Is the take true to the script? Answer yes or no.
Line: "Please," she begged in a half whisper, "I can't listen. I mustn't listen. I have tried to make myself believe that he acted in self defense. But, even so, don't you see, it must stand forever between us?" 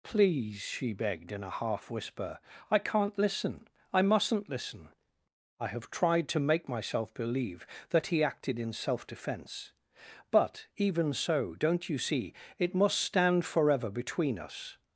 yes